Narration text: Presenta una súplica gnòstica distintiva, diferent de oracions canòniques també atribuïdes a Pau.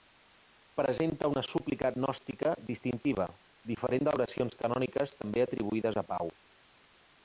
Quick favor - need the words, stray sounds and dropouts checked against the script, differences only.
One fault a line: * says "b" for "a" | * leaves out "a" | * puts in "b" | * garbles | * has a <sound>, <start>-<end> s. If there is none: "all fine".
all fine